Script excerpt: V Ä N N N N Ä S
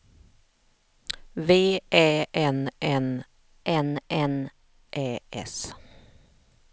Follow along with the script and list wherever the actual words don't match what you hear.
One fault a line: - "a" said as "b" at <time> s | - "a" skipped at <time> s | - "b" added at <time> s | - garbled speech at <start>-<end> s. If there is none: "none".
none